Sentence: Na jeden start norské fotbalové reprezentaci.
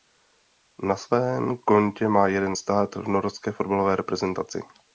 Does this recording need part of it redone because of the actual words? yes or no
yes